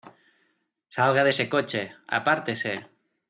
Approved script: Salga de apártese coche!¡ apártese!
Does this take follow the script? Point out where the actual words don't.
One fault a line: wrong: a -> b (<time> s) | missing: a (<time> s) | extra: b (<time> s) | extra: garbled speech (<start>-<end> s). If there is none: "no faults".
wrong: apártese -> ese (1.3 s)